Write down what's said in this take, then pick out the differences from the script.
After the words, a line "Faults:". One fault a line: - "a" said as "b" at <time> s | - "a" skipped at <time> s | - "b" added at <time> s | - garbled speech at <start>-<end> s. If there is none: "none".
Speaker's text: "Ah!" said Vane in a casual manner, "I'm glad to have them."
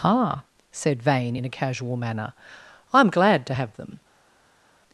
"Ah!" said Vane in a casual manner, "I'm glad to have them."
Faults:
none